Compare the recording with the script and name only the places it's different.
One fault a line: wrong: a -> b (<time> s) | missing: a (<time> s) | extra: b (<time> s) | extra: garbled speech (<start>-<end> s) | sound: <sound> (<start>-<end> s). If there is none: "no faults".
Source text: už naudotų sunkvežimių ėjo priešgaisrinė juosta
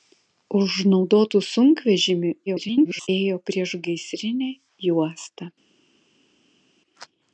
extra: garbled speech (2.5-3.1 s)